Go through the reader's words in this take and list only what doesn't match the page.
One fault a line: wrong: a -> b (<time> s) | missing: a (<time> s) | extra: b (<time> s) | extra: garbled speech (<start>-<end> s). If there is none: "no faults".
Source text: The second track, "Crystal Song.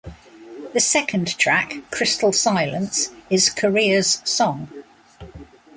extra: Silence is Corea's (2.3 s)